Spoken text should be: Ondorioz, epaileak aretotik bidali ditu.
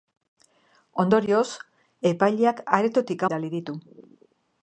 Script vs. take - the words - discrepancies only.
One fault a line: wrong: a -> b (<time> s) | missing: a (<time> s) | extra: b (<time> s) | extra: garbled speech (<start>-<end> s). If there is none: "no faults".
no faults